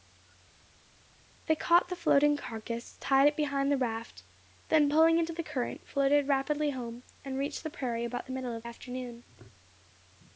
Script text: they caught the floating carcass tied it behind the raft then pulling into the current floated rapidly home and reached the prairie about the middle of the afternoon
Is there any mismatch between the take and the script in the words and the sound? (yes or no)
yes